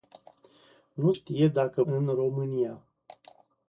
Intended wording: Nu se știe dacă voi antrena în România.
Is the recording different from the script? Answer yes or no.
yes